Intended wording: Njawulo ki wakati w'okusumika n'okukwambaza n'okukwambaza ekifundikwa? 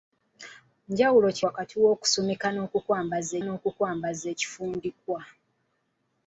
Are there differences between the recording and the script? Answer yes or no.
no